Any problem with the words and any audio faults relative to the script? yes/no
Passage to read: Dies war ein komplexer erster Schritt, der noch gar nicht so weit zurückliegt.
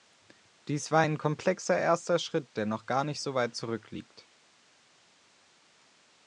no